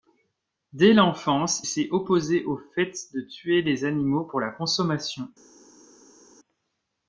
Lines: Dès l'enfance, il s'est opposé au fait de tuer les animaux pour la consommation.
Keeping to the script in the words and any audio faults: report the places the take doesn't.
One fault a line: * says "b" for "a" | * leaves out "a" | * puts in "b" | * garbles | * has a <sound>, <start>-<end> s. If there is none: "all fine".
* leaves out "il"